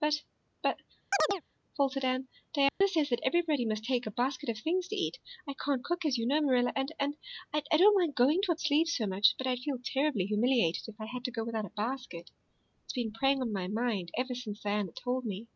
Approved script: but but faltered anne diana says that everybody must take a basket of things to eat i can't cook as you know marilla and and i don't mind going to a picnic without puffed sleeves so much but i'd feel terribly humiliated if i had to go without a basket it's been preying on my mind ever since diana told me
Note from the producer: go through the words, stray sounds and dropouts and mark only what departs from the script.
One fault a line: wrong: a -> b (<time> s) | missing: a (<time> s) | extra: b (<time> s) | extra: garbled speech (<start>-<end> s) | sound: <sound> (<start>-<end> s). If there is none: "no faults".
sound: chirp (1.1-1.4 s)
sound: dropout (2.7-2.8 s)
missing: picnic without puffed (8.6 s)